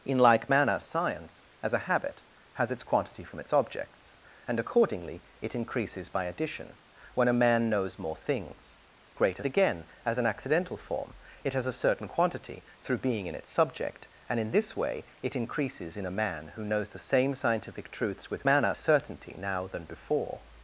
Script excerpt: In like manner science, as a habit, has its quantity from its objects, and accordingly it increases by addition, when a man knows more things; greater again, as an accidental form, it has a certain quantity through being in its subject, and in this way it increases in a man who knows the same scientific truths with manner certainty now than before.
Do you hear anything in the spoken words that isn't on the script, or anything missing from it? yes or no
no